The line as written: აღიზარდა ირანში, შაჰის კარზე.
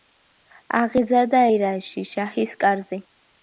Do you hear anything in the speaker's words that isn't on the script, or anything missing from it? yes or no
no